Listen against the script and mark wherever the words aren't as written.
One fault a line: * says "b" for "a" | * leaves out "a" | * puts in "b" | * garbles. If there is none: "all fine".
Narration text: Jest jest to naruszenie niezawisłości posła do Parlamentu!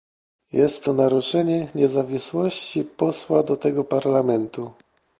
* leaves out "jest"
* puts in "tego"